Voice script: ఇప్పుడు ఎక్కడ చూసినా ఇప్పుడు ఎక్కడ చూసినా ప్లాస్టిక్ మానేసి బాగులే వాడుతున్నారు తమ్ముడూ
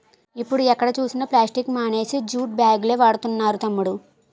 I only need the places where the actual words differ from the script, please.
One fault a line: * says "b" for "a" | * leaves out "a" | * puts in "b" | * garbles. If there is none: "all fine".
* leaves out "ఇప్పుడు ఎక్కడ చూసినా"
* puts in "జూట్"